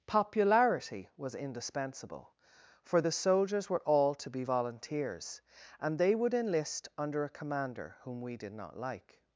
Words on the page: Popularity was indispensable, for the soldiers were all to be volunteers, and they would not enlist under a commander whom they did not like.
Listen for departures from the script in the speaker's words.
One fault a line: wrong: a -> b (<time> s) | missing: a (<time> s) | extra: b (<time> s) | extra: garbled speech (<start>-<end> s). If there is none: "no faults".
missing: not (6.3 s)
wrong: they -> we (8.2 s)